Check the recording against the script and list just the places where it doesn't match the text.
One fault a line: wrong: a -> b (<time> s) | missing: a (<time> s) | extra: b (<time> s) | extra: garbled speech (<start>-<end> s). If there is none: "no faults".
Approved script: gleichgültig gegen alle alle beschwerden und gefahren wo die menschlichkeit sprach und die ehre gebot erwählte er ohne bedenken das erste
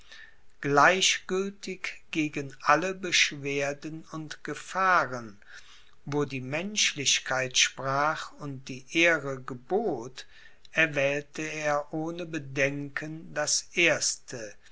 missing: alle (2.9 s)